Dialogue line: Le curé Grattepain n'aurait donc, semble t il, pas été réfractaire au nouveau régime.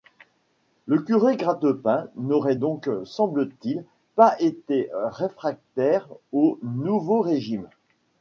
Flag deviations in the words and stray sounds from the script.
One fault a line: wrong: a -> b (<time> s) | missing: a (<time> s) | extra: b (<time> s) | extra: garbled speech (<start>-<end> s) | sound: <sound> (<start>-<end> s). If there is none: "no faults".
no faults